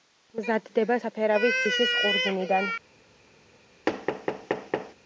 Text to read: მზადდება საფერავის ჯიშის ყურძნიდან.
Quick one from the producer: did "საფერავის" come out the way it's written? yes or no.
yes